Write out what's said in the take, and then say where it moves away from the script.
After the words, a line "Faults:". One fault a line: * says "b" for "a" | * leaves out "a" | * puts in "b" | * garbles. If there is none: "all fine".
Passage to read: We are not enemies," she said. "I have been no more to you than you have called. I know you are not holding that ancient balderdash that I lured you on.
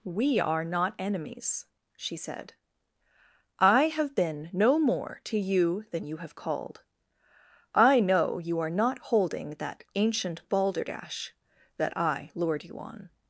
We are not enemies," she said. "I have been no more to you than you have called. I know you are not holding that ancient balderdash that I lured you on.
Faults:
all fine